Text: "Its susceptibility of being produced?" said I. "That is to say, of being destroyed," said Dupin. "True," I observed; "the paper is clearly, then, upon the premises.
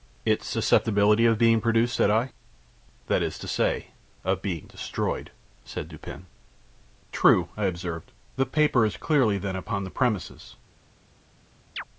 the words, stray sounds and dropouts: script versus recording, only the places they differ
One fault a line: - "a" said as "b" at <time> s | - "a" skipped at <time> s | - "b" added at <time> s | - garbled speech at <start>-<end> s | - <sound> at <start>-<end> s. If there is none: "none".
- chirp at 11.8-11.8 s